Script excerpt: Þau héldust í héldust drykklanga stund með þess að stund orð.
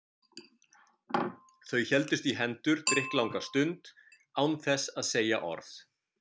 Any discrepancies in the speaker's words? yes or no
yes